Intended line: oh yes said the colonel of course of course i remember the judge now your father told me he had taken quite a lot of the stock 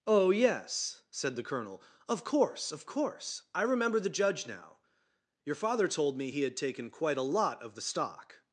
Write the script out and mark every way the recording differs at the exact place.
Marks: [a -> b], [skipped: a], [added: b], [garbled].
oh yes said the colonel of course of course i remember the judge now your father told me he had taken quite a lot of the stock